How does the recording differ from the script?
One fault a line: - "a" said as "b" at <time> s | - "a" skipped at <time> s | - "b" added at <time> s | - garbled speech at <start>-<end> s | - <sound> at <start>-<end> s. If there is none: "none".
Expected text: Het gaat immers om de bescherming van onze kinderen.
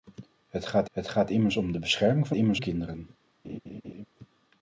- "het gaat" added at 0.9 s
- "onze" said as "immers" at 2.3 s
- laugh at 3.4-4.0 s